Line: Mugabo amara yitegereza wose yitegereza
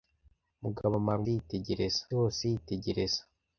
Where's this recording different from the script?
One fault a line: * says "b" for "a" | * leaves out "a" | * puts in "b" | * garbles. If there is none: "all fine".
all fine